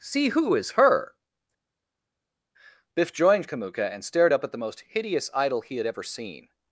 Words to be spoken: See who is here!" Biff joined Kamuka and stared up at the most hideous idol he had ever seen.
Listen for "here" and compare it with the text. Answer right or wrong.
wrong